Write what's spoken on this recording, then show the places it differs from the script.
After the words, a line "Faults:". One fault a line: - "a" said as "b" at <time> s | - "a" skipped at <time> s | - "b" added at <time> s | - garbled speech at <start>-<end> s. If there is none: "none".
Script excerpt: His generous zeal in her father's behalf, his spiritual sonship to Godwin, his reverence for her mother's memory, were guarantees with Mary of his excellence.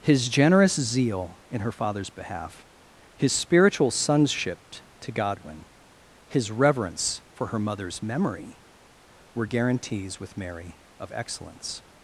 His generous zeal in her father's behalf, his spiritual sonship to Godwin, his reverence for her mother's memory, were guarantees with Mary of excellence.
Faults:
- "his" skipped at 11.1 s